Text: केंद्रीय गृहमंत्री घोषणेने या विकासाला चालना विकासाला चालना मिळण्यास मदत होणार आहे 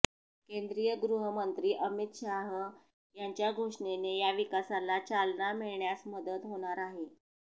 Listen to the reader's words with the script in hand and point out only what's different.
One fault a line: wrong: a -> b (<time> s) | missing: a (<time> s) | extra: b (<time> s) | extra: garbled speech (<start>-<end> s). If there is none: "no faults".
extra: अमित शाह यांच्या (1.9 s)
missing: विकासाला चालना (5.5 s)